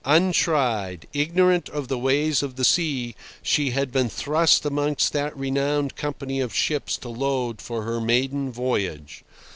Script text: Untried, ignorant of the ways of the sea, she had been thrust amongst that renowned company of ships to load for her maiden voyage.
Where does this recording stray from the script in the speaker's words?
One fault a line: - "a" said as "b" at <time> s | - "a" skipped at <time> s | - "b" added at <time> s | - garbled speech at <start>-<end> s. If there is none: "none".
none